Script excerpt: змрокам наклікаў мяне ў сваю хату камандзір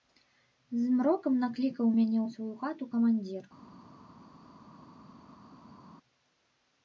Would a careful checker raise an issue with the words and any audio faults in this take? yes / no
no